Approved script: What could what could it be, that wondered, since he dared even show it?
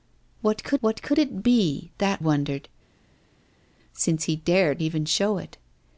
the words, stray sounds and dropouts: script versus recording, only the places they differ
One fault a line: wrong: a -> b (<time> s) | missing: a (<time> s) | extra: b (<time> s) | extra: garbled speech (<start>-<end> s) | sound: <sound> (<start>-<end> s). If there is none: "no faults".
no faults